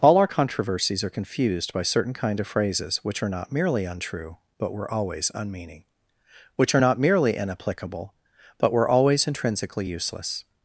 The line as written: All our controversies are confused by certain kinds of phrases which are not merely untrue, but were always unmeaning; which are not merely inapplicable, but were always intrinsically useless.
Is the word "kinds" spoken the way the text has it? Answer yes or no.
no